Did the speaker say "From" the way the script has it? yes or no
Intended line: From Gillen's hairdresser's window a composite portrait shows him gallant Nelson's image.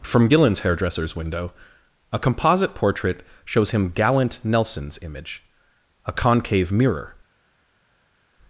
yes